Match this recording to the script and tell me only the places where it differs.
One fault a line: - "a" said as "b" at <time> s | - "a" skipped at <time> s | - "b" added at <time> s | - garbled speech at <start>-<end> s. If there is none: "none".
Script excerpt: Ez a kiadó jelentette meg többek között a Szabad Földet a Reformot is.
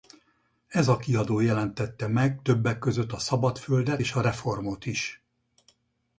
- "és" added at 4.0 s